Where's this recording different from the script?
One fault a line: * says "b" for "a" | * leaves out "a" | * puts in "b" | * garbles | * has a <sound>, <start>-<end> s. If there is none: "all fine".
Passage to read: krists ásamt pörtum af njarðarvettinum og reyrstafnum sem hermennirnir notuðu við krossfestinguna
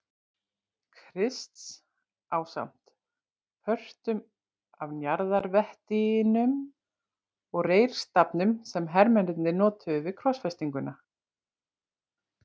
all fine